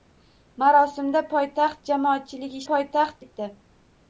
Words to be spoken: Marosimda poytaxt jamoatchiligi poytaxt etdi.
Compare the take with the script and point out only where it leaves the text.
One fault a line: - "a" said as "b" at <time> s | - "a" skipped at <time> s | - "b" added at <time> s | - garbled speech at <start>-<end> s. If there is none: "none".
none